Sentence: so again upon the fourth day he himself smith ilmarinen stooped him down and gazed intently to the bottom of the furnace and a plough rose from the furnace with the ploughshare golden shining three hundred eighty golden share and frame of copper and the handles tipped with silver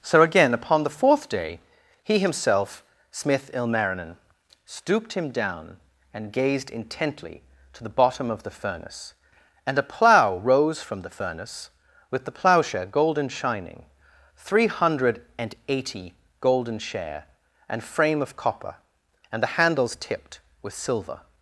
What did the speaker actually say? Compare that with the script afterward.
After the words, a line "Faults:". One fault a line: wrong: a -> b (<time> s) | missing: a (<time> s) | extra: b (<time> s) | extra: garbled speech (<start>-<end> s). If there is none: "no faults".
so again upon the fourth day he himself smith ilmarinen stooped him down and gazed intently to the bottom of the furnace and a plough rose from the furnace with the ploughshare golden shining three hundred and eighty golden share and frame of copper and the handles tipped with silver
Faults:
extra: and (15.4 s)